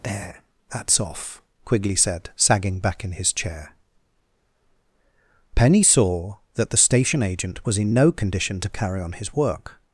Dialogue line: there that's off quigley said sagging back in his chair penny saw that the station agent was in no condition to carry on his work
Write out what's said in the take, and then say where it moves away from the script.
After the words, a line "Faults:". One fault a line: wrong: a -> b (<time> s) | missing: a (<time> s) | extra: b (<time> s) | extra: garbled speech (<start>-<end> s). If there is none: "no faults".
there that's off quigley said sagging back in his chair penny saw that the station agent was in no condition to carry on his work
Faults:
no faults